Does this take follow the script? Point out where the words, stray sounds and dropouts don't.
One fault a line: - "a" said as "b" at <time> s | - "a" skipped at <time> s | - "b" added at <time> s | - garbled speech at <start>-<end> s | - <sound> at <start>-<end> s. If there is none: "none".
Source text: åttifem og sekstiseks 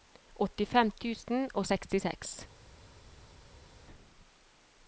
- "tusen" added at 1.0 s